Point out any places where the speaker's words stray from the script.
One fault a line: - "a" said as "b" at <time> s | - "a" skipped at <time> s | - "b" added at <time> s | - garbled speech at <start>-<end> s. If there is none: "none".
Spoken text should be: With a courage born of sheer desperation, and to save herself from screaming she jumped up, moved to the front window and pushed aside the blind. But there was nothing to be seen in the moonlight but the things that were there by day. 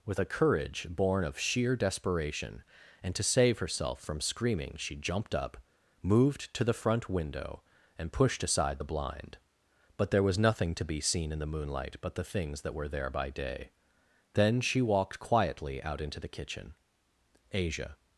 - "Then she walked quietly out into the kitchen Asia" added at 14.3 s